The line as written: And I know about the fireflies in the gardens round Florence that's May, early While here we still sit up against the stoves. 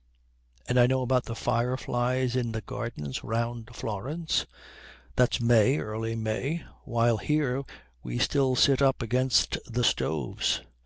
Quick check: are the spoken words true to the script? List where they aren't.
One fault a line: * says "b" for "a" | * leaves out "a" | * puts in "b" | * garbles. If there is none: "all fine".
* puts in "May"